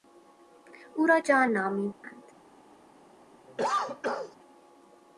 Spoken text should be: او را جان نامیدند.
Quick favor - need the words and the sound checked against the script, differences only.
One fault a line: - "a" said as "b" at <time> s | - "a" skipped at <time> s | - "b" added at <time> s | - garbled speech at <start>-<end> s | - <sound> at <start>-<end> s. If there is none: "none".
- dropout at 1.9-2.0 s
- cough at 3.5-4.4 s